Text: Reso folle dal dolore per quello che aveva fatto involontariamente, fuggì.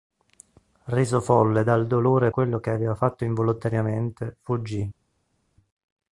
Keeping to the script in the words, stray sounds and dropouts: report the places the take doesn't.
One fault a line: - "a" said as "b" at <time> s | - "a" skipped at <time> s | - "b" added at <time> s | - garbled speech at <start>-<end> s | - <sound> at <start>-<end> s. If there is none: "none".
- "per" skipped at 2.3 s